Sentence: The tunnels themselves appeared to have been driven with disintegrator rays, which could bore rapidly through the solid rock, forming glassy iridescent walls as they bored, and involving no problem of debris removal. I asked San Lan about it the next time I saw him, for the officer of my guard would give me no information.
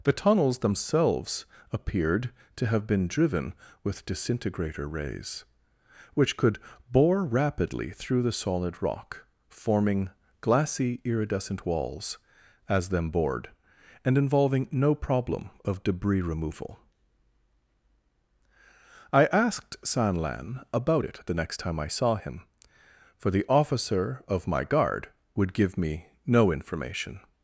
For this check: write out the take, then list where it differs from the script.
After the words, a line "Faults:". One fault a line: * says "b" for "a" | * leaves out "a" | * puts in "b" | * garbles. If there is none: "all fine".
The tunnels themselves appeared to have been driven with disintegrator rays, which could bore rapidly through the solid rock, forming glassy iridescent walls as them bored, and involving no problem of debris removal. I asked San Lan about it the next time I saw him, for the officer of my guard would give me no information.
Faults:
* says "them" for "they"